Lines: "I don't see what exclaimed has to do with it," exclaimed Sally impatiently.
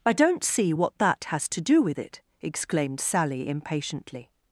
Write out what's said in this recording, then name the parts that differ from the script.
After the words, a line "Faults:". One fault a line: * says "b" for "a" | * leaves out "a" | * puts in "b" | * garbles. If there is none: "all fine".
"I don't see what that has to do with it," exclaimed Sally impatiently.
Faults:
* says "that" for "exclaimed"